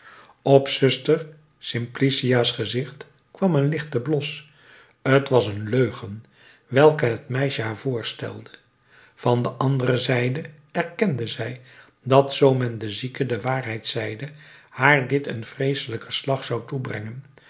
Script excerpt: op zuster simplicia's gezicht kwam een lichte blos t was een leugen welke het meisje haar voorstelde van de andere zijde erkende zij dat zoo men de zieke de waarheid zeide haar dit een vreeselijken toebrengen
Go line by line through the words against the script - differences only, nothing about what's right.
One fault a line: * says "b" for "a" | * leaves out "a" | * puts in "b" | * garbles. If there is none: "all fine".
* puts in "slag zou"